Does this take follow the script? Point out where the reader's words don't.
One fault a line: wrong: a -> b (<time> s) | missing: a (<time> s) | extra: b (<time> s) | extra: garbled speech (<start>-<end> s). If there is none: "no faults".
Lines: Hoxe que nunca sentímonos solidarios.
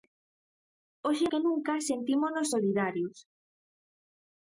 no faults